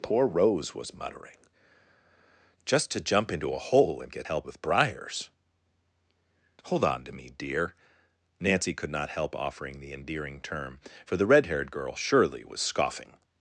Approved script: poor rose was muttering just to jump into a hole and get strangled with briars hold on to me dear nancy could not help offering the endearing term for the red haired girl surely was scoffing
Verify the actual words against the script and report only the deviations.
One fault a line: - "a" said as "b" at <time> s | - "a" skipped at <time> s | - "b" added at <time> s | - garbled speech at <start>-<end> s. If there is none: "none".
- "strangled" said as "help" at 4.2 s